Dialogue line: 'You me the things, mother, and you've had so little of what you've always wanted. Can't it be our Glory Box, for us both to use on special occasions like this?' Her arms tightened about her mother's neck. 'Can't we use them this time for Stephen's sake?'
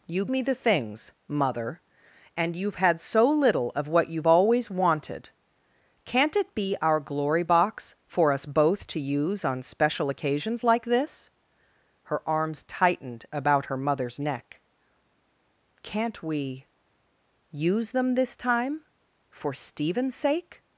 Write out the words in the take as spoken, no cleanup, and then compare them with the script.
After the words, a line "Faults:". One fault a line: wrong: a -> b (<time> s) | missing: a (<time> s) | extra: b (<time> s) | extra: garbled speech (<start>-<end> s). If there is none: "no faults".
'You me the things, mother, and you've had so little of what you've always wanted. Can't it be our Glory Box, for us both to use on special occasions like this?' Her arms tightened about her mother's neck. 'Can't we use them this time for Stephen's sake?'
Faults:
no faults